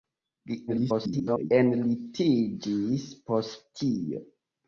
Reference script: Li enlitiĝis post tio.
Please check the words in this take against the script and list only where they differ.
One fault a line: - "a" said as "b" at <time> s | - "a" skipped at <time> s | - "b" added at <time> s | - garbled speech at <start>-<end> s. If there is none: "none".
- garbled speech at 0.7-1.5 s